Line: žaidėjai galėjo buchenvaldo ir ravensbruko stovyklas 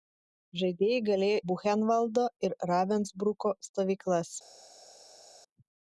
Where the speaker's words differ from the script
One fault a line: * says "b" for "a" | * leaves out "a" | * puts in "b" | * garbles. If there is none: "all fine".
all fine